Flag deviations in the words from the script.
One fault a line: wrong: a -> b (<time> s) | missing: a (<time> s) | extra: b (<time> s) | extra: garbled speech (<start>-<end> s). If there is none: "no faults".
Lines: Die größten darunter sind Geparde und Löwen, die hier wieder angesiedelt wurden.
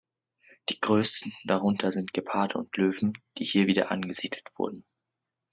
no faults